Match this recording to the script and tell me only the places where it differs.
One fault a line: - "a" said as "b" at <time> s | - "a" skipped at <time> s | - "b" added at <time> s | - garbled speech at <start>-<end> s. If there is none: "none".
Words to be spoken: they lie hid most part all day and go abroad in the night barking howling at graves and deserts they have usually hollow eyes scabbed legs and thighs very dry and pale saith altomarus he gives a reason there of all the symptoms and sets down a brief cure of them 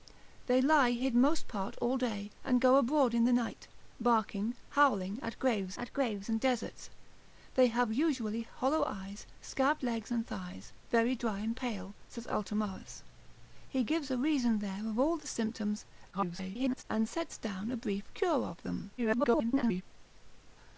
- "at graves" added at 5.8 s
- garbled speech at 16.1-16.8 s
- garbled speech at 19.0-19.8 s